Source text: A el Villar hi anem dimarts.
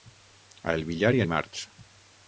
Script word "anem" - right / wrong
wrong